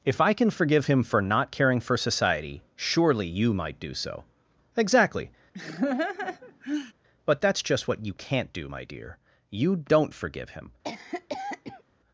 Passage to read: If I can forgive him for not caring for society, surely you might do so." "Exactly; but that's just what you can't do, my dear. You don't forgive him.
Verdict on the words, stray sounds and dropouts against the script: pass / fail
fail